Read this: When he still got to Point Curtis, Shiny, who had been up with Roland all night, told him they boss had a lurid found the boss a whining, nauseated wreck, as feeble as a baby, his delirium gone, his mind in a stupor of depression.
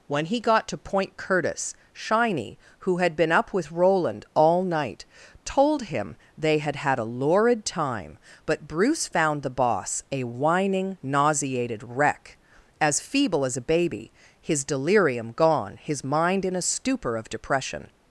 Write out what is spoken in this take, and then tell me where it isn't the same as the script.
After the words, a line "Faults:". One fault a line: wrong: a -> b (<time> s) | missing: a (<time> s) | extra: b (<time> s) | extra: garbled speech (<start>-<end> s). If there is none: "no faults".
When he got to Point Curtis, Shiny, who had been up with Roland all night, told him they had had a lurid time, but Bruce found the boss a whining, nauseated wreck, as feeble as a baby, his delirium gone, his mind in a stupor of depression.
Faults:
missing: still (0.4 s)
wrong: boss -> had (6.6 s)
extra: time but Bruce (7.7 s)